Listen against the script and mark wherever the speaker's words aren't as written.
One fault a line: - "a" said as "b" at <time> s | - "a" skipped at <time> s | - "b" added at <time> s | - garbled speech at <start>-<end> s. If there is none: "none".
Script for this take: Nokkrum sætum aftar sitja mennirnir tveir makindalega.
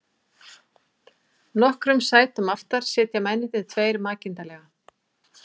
none